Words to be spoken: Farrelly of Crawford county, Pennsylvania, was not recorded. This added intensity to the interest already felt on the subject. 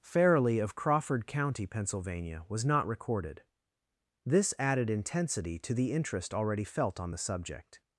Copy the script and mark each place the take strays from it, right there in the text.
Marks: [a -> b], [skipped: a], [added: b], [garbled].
Farrelly of Crawford county, Pennsylvania, was not recorded. This added intensity to the interest already felt on the subject.